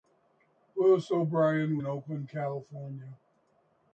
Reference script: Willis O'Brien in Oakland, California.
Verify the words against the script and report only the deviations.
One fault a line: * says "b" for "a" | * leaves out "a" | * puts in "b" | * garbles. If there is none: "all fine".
all fine